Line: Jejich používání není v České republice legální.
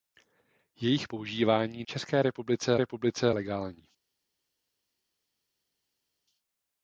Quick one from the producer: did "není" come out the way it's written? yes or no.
no